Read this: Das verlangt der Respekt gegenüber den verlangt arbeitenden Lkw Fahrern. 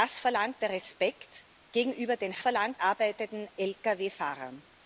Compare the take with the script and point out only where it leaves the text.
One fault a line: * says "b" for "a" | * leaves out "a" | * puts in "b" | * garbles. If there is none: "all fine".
all fine